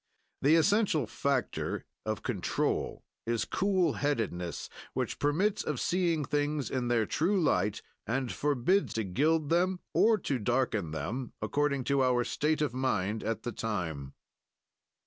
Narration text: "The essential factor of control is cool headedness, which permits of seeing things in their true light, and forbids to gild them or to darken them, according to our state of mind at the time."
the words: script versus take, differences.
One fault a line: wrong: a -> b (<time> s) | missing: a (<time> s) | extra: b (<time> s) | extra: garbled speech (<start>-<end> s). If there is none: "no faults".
no faults